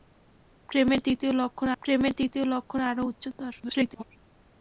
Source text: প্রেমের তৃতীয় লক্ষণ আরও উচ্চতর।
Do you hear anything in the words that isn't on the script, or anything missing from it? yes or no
yes